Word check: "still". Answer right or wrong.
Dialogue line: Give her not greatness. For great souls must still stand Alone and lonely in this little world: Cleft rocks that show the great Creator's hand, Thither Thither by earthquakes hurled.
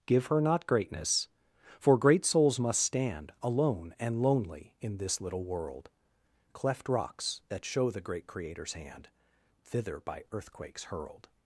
wrong